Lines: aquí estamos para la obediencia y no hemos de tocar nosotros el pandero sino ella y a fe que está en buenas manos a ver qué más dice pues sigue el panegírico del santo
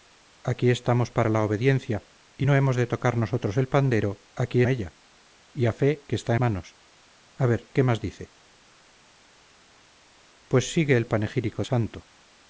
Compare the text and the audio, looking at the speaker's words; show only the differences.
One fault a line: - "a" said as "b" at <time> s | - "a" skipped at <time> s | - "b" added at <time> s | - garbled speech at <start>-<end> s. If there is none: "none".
- "sino" said as "aquí" at 4.4 s
- "en buenas" skipped at 6.3 s
- "del" skipped at 11.6 s